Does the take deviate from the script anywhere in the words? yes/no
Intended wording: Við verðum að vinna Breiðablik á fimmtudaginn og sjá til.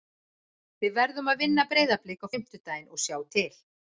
no